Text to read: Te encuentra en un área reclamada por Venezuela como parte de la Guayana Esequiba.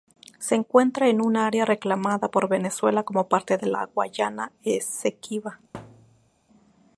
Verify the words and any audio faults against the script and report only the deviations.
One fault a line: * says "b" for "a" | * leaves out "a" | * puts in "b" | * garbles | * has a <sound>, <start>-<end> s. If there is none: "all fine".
* says "Se" for "Te"
* has a thud, 5.7-6.3 s